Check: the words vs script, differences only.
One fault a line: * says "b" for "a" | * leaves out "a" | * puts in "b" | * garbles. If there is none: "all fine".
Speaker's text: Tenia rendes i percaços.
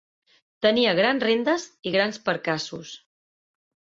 * puts in "grans"
* puts in "grans"